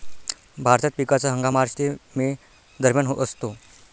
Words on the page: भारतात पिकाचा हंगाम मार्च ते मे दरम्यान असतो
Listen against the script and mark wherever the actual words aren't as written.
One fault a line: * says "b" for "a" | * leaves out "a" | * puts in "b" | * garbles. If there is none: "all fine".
all fine